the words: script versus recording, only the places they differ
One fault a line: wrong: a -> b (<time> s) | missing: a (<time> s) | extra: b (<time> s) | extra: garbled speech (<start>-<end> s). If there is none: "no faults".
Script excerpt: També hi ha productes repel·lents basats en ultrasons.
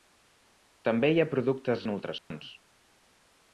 missing: repel·lents basats (1.9 s)